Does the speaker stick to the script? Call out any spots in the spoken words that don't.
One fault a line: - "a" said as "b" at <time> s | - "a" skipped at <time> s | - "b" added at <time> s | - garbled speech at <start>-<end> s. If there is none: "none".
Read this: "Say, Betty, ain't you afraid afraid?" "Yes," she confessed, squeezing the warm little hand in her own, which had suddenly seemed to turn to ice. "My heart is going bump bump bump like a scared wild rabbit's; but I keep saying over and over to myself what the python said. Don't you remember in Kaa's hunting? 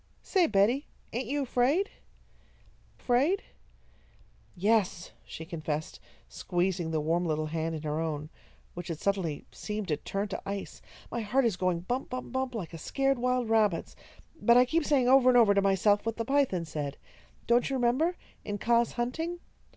none